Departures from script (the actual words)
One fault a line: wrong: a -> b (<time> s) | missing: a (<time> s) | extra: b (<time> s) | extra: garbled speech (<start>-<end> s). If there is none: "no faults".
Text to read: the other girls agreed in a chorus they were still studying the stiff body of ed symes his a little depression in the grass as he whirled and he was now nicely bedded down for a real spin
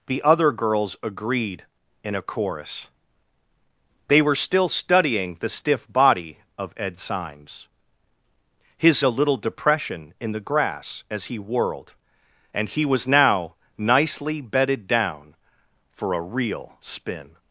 no faults